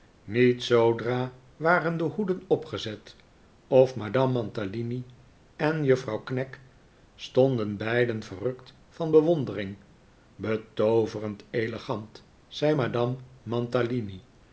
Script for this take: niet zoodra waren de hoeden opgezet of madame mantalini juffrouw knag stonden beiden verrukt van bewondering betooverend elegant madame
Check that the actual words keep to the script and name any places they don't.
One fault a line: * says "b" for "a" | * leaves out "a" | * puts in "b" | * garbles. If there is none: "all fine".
* puts in "en"
* puts in "zei"